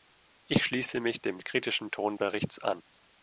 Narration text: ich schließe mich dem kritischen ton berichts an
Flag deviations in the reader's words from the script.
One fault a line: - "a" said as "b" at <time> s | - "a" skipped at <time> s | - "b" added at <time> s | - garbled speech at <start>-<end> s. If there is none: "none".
none